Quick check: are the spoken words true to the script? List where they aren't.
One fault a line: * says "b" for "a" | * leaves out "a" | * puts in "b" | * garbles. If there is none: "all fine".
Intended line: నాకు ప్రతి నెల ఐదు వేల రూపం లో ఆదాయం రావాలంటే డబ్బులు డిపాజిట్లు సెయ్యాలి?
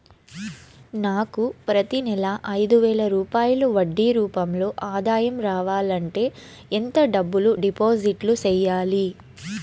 * puts in "రూపాయలు వడ్డీ"
* puts in "ఎంత"